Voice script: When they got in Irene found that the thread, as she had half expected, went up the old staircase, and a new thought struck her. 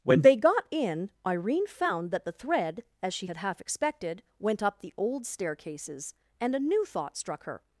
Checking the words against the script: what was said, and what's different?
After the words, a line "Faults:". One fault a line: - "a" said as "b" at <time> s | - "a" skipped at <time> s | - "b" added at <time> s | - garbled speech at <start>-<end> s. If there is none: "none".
When they got in Irene found that the thread, as she had half expected, went up the old staircases, and a new thought struck her.
Faults:
- "staircase" said as "staircases" at 5.3 s